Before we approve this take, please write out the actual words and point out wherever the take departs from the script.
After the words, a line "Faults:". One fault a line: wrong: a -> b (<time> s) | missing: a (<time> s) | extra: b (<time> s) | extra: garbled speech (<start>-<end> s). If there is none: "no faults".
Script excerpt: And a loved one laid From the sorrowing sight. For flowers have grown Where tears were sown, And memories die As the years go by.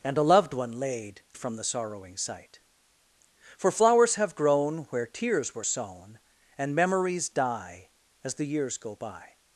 And a loved one laid From the sorrowing sight. For flowers have grown Where tears were sown, And memories die As the years go by.
Faults:
no faults